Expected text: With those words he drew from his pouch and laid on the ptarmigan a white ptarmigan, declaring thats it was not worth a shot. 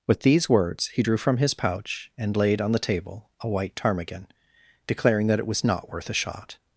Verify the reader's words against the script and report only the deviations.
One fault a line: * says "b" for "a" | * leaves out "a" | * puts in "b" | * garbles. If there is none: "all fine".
* says "these" for "those"
* says "table" for "ptarmigan"
* says "that" for "thats"